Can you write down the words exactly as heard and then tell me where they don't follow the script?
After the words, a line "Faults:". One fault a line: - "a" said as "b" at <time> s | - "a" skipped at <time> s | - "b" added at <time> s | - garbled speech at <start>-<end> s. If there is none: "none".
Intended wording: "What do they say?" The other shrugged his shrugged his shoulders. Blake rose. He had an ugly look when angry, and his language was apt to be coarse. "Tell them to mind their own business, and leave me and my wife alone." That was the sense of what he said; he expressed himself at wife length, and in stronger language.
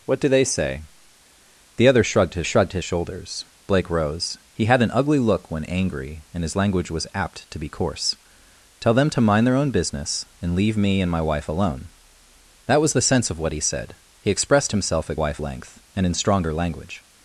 "What do they say?" The other shrugged his shrugged his shoulders. Blake rose. He had an ugly look when angry, and his language was apt to be coarse. "Tell them to mind their own business, and leave me and my wife alone." That was the sense of what he said; he expressed himself at wife length, and in stronger language.
Faults:
none